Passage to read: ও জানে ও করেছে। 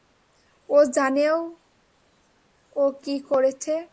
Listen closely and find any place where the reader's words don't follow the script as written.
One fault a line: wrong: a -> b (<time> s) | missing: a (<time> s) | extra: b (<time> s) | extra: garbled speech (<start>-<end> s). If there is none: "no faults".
extra: কী (3.0 s)